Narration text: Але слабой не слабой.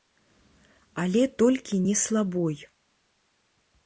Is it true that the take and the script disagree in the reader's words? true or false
true